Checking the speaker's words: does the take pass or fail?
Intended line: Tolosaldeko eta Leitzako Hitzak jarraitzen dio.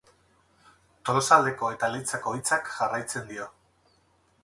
pass